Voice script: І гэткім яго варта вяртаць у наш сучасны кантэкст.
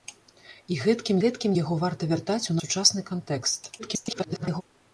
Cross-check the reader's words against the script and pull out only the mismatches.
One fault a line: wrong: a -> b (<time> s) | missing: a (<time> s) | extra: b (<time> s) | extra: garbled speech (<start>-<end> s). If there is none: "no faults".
extra: гэткім (1.2 s)
missing: наш (2.6 s)
extra: garbled speech (3.8-4.6 s)